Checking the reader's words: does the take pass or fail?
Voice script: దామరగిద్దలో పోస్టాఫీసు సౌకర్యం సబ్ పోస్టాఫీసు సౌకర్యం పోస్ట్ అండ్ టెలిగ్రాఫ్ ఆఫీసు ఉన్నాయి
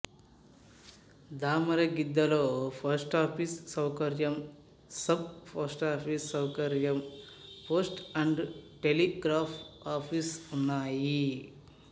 pass